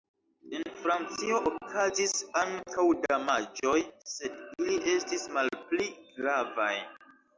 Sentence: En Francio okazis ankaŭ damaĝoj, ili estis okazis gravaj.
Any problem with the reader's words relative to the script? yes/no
yes